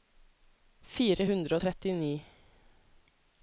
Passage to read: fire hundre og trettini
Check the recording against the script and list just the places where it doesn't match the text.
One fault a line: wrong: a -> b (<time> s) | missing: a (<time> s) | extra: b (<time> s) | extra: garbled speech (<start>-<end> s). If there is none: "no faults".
no faults